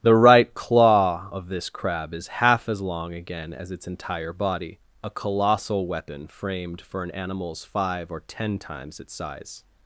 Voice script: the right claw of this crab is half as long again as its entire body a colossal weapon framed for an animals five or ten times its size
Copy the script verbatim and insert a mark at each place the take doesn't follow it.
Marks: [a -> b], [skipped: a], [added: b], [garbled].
the right claw of this crab is half as long again as its entire body a colossal weapon framed for an animals five or ten times its size